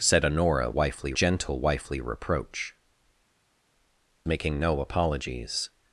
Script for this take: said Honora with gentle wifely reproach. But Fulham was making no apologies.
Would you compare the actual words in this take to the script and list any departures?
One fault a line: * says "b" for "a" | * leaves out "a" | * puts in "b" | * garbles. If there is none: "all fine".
* says "wifely" for "with"
* leaves out "But Fulham was"